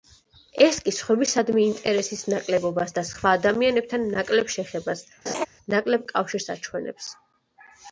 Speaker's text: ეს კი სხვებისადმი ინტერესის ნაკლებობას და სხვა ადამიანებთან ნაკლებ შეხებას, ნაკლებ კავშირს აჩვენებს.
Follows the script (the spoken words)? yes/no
yes